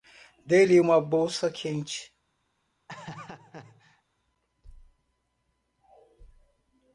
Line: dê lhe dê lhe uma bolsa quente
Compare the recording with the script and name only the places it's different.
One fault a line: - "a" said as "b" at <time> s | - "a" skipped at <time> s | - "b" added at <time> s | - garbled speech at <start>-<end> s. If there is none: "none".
- "dê lhe" skipped at 0.8 s